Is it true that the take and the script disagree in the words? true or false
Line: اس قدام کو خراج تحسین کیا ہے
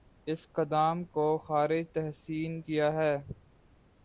false